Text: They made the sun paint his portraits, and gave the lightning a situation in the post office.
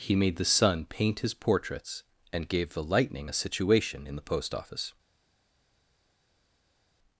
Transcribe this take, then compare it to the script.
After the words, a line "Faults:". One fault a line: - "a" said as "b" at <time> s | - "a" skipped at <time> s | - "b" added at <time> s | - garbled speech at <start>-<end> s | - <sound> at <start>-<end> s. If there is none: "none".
He made the sun paint his portraits, and gave the lightning a situation in the post office.
Faults:
- "They" said as "He" at 0.0 s